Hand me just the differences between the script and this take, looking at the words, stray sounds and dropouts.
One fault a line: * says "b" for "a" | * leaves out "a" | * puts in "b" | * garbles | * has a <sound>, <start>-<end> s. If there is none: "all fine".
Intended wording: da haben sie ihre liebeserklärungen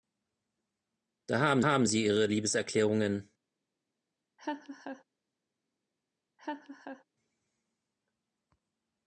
* puts in "haben"
* has a laugh, 4.4-5.0 s
* has a laugh, 6.4-7.0 s